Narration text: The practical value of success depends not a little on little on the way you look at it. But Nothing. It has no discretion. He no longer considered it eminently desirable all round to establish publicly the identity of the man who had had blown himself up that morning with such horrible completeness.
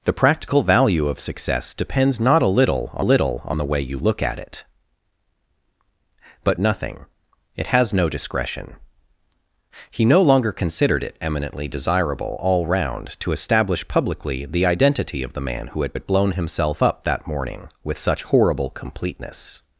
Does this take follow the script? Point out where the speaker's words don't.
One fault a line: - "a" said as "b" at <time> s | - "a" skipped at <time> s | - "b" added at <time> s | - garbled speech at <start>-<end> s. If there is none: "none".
none